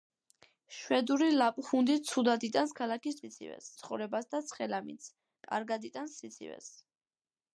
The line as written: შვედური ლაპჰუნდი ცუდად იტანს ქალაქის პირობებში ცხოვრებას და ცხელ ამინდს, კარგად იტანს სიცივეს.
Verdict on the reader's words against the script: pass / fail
fail